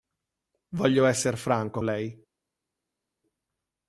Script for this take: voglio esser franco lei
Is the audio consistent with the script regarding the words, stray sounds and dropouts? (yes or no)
yes